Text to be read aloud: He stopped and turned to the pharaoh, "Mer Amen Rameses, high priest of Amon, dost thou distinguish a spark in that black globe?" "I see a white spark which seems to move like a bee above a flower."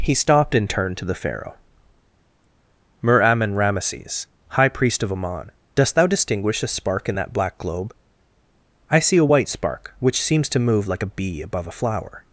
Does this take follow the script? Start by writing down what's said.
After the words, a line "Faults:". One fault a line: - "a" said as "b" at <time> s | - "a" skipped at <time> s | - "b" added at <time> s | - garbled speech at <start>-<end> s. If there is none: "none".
He stopped and turned to the pharaoh, "Mer Amen Rameses, high priest of Amon, dost thou distinguish a spark in that black globe?" "I see a white spark which seems to move like a bee above a flower."
Faults:
none